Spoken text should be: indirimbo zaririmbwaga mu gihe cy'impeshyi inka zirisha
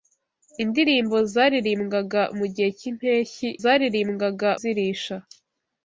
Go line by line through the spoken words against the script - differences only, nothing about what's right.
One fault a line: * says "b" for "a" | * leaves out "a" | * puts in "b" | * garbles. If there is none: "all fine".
* says "zaririmbwaga" for "inka"